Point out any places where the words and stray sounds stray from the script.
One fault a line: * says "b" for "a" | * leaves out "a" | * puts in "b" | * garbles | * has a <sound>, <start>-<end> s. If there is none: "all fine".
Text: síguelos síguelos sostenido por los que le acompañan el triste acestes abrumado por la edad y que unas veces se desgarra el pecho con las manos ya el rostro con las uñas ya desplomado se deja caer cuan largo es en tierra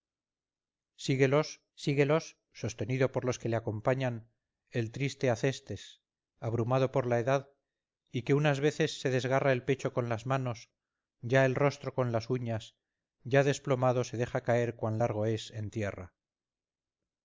all fine